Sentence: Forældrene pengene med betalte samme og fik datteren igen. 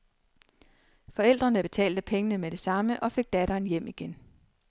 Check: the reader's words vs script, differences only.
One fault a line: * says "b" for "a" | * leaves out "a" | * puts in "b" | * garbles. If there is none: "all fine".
* puts in "betalte"
* says "det" for "betalte"
* puts in "hjem"